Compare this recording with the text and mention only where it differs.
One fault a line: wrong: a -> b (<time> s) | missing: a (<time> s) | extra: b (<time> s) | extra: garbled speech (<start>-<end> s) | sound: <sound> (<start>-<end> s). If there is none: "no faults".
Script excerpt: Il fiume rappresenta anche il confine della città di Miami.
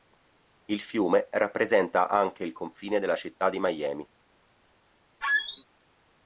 sound: squeak (5.2-5.6 s)